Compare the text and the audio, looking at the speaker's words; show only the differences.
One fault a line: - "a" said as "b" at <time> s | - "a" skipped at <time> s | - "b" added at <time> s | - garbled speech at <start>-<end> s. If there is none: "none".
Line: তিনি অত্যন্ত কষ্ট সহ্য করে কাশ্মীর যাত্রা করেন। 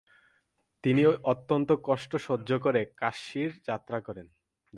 none